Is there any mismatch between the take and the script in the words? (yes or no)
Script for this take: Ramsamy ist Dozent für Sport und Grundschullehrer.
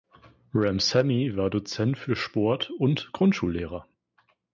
yes